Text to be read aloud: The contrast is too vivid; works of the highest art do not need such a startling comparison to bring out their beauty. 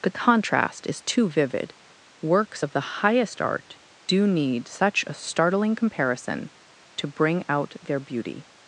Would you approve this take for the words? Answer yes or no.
no